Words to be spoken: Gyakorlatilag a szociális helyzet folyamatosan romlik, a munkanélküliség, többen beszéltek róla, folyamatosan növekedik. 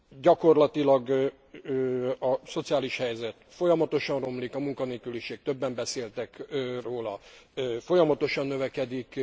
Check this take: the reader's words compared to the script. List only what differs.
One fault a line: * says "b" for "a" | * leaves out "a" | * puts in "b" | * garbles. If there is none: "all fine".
all fine